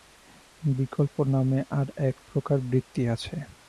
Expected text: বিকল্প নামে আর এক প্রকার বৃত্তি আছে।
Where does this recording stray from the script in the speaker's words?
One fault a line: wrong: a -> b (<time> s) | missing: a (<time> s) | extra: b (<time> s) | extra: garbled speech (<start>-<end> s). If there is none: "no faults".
no faults